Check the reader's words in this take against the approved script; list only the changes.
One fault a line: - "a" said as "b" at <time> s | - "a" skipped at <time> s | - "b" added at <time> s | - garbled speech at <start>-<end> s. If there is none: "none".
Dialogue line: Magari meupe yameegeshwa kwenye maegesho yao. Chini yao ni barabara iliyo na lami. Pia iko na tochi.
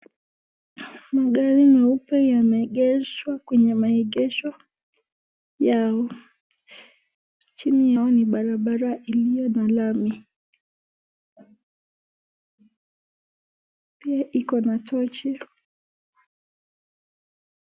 none